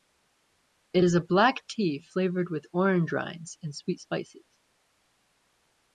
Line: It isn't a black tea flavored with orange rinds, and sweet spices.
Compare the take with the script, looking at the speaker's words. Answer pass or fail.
fail